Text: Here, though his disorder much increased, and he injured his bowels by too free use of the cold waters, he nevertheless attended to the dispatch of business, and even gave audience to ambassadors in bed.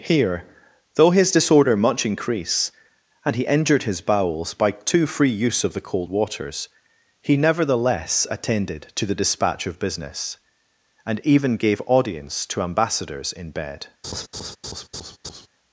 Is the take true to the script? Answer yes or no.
no